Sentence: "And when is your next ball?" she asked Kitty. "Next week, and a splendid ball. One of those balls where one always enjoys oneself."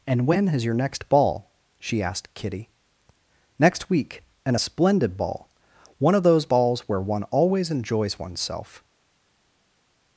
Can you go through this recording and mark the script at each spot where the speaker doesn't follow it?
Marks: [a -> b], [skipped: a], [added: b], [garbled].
"And when is your next ball?" she asked Kitty. "Next week, and a splendid ball. One of those balls where one always enjoys oneself."